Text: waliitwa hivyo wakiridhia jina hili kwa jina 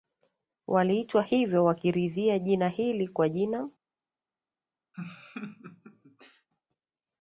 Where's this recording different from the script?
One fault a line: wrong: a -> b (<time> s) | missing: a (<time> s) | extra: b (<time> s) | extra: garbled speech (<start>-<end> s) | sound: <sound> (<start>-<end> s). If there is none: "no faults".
sound: laugh (4.9-6.5 s)